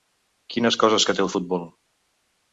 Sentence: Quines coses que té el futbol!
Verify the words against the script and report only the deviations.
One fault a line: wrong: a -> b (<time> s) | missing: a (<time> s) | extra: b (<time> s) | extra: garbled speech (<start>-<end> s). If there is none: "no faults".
no faults